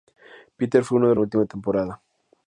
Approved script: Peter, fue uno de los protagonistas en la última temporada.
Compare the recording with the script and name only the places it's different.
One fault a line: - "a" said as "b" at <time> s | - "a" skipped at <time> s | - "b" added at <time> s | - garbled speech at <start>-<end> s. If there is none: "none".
- "los protagonistas en" skipped at 1.1 s